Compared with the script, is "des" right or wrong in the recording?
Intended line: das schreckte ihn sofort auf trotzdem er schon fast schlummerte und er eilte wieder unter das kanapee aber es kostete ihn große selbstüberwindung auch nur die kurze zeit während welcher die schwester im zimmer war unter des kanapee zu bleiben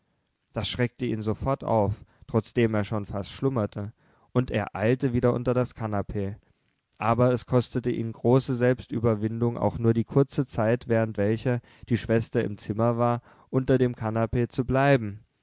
wrong